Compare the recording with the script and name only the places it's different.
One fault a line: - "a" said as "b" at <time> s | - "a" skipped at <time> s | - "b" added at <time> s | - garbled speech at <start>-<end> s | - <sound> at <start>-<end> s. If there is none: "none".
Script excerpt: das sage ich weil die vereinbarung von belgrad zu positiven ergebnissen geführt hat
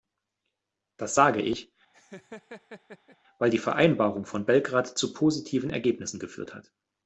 - laugh at 1.9-3.2 s